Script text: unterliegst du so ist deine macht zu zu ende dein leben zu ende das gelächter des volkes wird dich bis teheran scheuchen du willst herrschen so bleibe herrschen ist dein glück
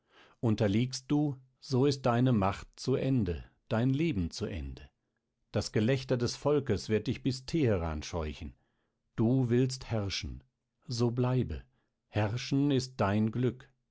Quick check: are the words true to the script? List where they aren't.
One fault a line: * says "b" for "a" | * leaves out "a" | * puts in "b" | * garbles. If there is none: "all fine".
* leaves out "zu"